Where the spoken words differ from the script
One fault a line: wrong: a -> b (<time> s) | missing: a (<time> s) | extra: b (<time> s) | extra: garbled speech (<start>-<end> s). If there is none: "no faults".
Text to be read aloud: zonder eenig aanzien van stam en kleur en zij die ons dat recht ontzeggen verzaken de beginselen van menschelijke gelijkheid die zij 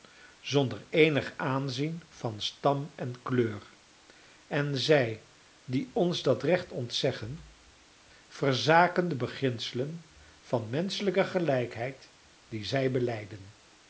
no faults